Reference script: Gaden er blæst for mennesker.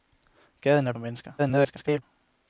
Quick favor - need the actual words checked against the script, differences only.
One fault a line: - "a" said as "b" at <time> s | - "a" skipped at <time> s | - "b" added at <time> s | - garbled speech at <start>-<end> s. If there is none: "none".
- "blæst" skipped at 0.9 s
- garbled speech at 1.4-2.0 s